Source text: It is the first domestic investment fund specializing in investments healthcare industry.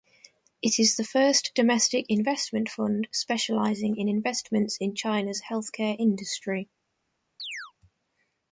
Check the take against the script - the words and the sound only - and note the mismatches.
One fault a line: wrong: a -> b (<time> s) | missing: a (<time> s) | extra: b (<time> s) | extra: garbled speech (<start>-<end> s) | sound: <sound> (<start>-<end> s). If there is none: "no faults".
extra: in China's (4.8 s)
sound: chirp (7.4-7.7 s)